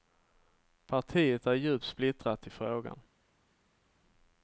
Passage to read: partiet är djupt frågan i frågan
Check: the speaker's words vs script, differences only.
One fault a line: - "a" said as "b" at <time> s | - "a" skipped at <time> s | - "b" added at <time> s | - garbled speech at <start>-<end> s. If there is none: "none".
- "frågan" said as "splittrat" at 1.9 s